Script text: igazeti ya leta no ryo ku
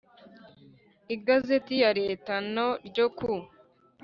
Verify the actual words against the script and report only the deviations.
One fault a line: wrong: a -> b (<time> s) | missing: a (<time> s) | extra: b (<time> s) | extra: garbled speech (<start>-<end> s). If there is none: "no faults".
no faults